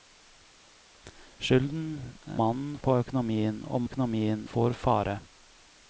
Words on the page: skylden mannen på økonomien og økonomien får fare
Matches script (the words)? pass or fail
pass